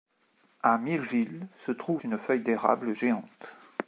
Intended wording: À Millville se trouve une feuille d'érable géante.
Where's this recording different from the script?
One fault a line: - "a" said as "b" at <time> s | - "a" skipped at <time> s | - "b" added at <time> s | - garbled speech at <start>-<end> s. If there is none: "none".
none